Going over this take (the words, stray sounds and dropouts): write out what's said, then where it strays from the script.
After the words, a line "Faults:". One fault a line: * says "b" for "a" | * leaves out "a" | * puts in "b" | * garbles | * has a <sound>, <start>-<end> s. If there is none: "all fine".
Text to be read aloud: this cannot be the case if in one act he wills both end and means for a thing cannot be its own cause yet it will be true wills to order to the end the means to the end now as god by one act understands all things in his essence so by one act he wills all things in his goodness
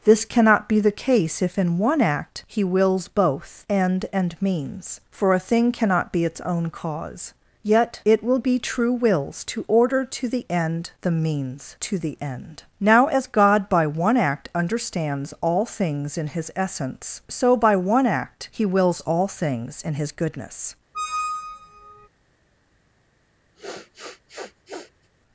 this cannot be the case if in one act he wills both end and means for a thing cannot be its own cause yet it will be true wills to order to the end the means to the end now as god by one act understands all things in his essence so by one act he wills all things in his goodness
Faults:
* has a squeak, 20.9-22.1 s
* has a sniff, 23.5-25.1 s